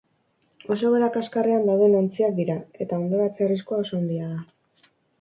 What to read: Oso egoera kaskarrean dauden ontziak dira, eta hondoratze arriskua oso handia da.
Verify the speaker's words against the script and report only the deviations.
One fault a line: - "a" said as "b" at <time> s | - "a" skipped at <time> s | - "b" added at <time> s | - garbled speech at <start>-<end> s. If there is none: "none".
none